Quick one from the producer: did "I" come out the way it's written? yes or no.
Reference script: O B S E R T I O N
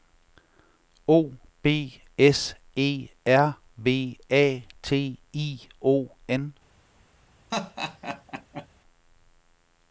yes